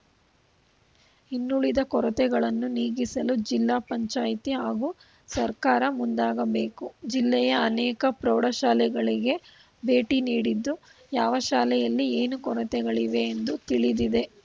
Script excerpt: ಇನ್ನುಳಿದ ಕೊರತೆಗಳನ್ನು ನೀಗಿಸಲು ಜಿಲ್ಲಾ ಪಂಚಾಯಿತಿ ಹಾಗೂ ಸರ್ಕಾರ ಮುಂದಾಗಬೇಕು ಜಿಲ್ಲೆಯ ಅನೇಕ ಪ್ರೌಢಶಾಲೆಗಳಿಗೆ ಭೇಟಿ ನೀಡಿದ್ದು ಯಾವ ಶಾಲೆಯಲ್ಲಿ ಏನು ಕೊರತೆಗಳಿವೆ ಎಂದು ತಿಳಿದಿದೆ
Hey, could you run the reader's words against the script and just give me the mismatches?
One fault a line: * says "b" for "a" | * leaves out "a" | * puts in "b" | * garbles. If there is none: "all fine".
all fine